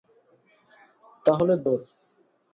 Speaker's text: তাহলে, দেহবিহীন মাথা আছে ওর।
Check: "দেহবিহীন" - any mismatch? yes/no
yes